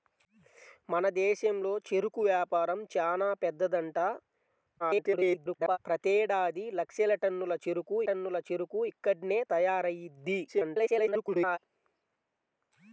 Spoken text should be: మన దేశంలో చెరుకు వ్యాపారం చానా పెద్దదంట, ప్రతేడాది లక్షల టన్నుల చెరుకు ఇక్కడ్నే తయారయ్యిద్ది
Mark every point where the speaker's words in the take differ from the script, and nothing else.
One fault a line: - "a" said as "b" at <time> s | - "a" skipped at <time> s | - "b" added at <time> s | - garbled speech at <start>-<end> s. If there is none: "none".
- garbled speech at 4.8-5.8 s
- "టన్నుల చెరుకు" added at 8.1 s
- garbled speech at 10.5-11.6 s